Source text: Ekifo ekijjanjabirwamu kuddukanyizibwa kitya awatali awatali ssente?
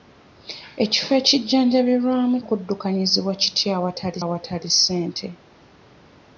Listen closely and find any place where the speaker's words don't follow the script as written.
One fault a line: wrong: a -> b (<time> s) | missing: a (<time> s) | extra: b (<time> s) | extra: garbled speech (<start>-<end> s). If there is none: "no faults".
no faults